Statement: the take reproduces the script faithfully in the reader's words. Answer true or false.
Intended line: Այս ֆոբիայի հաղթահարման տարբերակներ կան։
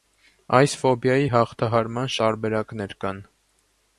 true